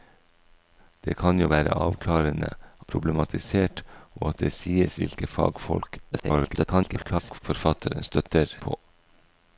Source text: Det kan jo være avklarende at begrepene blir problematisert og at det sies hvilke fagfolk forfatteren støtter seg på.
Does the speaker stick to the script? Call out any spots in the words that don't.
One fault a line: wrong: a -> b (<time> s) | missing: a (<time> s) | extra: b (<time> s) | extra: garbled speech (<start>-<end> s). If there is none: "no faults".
missing: at begrepene blir (2.5 s)
extra: garbled speech (6.1-7.4 s)
missing: seg (8.6 s)